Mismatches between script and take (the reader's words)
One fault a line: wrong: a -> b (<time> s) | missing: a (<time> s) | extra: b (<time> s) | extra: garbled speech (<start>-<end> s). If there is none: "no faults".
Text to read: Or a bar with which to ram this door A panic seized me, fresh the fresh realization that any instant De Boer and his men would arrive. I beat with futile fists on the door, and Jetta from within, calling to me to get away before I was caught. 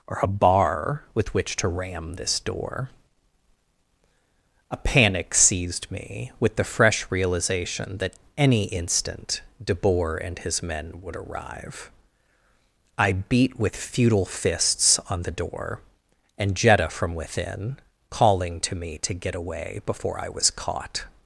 wrong: fresh -> with (6.4 s)